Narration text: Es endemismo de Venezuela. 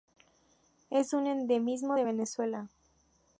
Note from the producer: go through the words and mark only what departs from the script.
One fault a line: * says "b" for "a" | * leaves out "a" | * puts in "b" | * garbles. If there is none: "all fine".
* puts in "un"